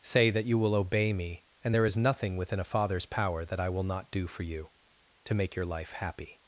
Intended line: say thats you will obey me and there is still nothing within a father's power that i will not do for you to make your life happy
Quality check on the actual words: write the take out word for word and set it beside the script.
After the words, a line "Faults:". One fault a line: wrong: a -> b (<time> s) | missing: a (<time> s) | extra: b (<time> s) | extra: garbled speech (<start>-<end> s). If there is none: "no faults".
say that you will obey me and there is nothing within a father's power that i will not do for you to make your life happy
Faults:
wrong: thats -> that (0.3 s)
missing: still (2.0 s)